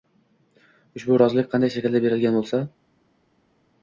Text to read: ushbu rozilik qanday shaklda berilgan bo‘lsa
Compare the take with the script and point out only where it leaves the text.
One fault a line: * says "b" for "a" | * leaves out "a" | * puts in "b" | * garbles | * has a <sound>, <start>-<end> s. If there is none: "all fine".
all fine